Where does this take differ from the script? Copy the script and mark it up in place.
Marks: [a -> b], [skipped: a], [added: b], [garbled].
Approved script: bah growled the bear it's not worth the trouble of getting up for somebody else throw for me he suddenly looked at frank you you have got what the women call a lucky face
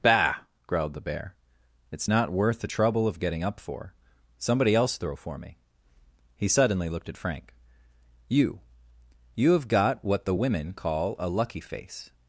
bah growled the bear it's not worth the trouble of getting up for somebody else throw for me he suddenly looked at frank you you have got what the women call a lucky face